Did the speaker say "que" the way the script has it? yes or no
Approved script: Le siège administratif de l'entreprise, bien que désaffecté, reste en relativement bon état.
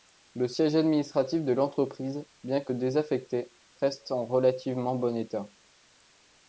yes